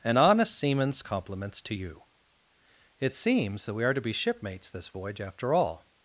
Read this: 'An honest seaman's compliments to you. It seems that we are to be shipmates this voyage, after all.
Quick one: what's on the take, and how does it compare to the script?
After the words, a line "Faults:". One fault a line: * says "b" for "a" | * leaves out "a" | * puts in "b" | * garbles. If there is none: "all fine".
'An honest seaman's compliments to you. It seems that we are to be shipmates this voyage, after all.
Faults:
all fine